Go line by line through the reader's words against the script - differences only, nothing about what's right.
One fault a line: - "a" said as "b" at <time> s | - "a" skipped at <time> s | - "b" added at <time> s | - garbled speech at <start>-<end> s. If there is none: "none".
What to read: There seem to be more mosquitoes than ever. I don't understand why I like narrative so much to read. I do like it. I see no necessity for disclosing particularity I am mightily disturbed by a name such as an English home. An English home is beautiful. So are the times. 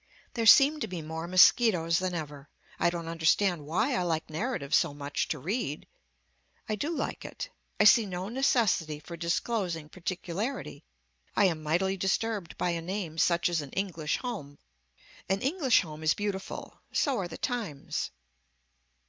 none